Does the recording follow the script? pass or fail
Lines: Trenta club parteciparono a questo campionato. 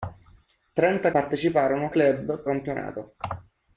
fail